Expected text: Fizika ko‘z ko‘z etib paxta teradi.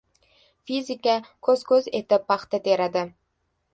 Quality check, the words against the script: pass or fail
pass